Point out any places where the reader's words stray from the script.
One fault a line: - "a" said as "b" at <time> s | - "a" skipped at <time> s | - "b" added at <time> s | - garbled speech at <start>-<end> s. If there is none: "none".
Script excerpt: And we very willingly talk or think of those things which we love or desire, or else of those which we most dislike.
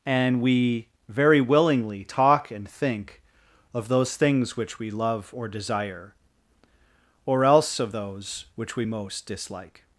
- "or" said as "and" at 2.5 s